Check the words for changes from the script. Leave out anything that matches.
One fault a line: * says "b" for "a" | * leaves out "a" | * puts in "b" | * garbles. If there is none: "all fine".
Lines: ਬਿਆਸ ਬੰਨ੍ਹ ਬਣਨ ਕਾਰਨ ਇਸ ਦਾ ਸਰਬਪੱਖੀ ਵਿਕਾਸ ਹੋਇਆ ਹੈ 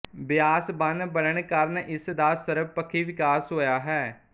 all fine